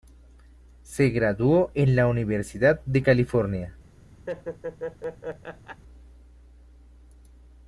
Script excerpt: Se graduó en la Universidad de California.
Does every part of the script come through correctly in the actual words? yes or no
yes